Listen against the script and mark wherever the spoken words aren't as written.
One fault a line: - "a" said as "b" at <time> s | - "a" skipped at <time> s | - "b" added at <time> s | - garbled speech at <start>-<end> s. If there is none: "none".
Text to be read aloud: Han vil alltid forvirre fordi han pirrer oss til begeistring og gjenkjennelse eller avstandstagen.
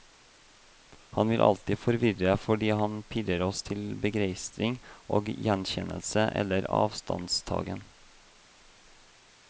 none